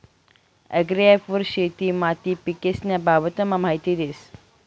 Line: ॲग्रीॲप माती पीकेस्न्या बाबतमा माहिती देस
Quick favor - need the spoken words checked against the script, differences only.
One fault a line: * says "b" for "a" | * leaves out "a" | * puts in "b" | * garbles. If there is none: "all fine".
* puts in "वर शेती"